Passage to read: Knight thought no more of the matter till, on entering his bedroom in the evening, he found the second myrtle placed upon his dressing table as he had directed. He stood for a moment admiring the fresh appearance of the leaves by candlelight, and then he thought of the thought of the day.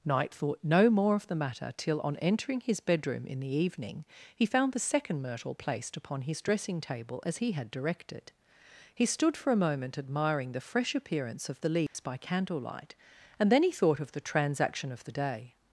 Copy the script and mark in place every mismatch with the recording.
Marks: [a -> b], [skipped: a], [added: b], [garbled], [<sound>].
Knight thought no more of the matter till, on entering his bedroom in the evening, he found the second myrtle placed upon his dressing table as he had directed. He stood for a moment admiring the fresh appearance of the leaves [dropout] by candlelight, and then he thought of the [thought -> transaction] of the day.